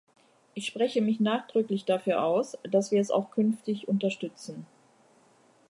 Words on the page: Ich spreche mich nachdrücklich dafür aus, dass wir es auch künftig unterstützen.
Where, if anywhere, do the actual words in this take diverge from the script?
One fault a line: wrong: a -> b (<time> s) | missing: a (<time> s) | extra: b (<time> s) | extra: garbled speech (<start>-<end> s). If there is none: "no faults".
no faults